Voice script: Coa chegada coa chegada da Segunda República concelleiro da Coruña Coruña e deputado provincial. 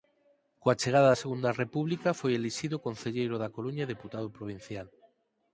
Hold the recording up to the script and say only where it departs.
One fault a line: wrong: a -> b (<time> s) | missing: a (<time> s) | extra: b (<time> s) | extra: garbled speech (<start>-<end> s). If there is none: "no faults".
missing: coa chegada (1.1 s)
extra: foi elixido (2.2 s)
missing: Coruña (3.8 s)